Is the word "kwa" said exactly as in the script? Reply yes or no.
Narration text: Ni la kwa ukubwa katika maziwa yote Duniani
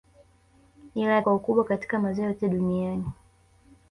yes